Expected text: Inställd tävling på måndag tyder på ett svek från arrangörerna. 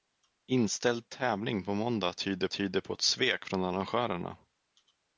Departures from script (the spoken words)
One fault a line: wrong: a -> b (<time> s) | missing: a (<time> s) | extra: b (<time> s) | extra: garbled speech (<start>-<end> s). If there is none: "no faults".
extra: tyder (2.5 s)